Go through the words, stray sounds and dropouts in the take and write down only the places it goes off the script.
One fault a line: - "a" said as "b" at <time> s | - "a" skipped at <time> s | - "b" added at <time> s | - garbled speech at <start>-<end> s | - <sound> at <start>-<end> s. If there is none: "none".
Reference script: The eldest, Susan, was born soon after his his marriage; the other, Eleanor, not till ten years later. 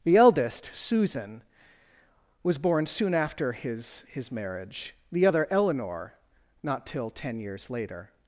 none